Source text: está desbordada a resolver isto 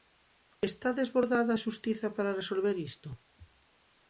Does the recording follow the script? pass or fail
fail